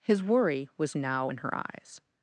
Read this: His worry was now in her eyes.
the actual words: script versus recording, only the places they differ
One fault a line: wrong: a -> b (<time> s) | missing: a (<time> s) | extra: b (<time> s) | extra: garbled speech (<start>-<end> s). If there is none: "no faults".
no faults